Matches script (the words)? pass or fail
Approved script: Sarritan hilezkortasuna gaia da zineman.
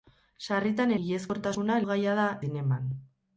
pass